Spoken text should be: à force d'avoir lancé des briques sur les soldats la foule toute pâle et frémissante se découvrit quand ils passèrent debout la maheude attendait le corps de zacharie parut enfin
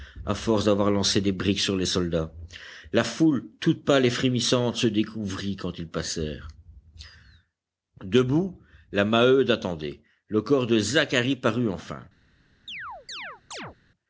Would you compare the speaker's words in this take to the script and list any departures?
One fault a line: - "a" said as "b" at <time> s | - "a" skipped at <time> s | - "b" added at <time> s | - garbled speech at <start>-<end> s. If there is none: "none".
none